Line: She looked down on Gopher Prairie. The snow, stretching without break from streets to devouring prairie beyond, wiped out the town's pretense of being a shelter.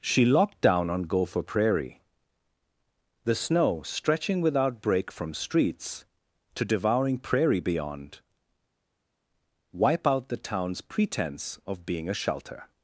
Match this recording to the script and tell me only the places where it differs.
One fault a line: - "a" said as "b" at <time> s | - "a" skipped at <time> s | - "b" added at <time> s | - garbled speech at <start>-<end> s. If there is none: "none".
- "looked" said as "locked" at 0.2 s
- "wiped" said as "wipe" at 9.7 s